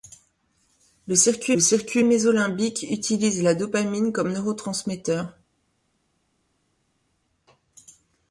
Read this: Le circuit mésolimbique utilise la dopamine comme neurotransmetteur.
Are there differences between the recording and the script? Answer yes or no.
yes